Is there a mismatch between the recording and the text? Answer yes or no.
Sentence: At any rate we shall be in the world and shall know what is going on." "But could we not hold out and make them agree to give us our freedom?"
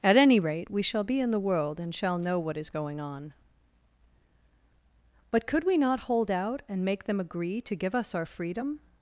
no